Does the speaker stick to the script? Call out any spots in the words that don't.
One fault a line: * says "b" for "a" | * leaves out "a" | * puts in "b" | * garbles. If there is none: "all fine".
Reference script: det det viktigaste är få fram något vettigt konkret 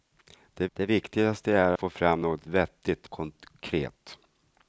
all fine